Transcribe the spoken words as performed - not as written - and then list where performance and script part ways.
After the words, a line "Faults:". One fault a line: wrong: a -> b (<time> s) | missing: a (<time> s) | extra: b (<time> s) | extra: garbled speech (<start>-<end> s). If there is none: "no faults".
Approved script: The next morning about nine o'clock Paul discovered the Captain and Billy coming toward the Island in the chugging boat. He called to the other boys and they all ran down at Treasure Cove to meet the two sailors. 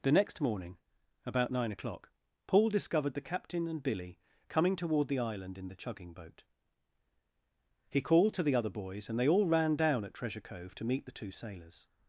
The next morning about nine o'clock Paul discovered the Captain and Billy coming toward the Island in the chugging boat. He called to the other boys and they all ran down at Treasure Cove to meet the two sailors.
Faults:
no faults